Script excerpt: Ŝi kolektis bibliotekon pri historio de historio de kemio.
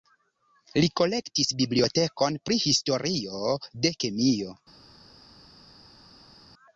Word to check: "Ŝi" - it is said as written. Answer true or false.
false